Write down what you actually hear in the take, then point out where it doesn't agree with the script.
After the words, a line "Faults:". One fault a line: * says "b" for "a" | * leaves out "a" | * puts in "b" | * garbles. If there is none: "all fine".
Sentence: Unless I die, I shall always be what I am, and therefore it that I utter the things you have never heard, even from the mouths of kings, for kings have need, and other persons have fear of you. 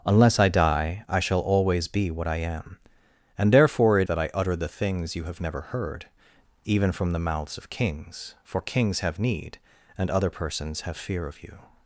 Unless I die, I shall always be what I am, and therefore it that I utter the things you have never heard, even from the mouths of kings, for kings have need, and other persons have fear of you.
Faults:
all fine